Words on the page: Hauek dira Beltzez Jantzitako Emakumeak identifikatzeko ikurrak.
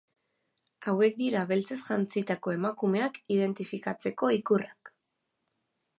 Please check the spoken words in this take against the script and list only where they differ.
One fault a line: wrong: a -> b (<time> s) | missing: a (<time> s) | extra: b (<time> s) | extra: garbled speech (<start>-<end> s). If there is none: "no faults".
no faults